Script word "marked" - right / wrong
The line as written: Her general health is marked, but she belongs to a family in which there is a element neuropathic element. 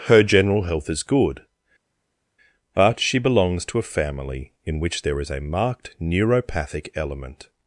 wrong